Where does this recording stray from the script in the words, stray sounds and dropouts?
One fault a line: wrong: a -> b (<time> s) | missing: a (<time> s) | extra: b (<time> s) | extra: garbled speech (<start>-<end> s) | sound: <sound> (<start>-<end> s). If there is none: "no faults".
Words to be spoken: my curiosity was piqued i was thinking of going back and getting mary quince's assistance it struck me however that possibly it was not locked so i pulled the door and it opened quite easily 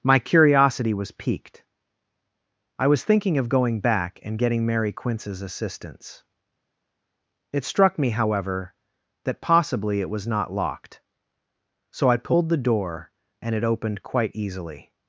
no faults